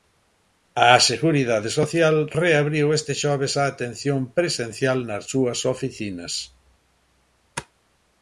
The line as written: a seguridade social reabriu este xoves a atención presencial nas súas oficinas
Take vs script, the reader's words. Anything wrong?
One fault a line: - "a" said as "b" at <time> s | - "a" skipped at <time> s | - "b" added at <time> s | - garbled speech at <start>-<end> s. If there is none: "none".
none